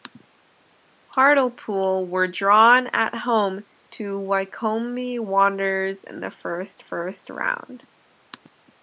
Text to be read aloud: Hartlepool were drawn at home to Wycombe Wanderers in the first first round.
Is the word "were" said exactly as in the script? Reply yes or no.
yes